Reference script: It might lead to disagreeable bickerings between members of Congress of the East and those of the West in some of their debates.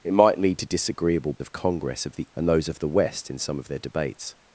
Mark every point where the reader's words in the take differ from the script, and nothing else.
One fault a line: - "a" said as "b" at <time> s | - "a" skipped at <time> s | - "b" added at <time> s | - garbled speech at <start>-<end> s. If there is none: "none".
- "bickerings between members" skipped at 1.3 s
- "East" skipped at 2.3 s